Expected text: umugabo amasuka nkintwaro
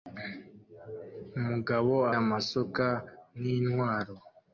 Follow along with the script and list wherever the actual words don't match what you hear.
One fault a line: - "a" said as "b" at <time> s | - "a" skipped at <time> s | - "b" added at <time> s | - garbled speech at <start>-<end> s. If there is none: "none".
none